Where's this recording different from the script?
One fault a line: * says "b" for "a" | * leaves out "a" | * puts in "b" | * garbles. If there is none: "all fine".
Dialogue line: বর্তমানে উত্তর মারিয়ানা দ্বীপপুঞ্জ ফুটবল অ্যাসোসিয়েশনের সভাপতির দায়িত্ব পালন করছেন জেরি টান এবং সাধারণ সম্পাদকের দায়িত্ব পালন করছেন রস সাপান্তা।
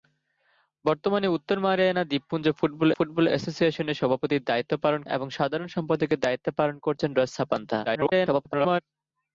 * puts in "ফুটবল"
* leaves out "করছেন জেরি টান"
* garbles